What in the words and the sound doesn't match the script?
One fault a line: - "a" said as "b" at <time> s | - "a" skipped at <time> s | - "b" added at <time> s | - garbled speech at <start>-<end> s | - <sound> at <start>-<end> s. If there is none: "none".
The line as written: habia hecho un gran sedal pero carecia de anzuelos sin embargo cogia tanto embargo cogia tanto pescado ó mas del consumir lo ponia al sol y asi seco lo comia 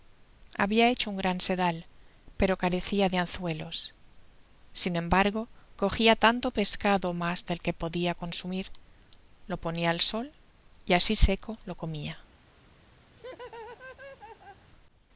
- "embargo cogia tanto" skipped at 6.5 s
- "que podia" added at 7.7 s
- laugh at 13.1-14.7 s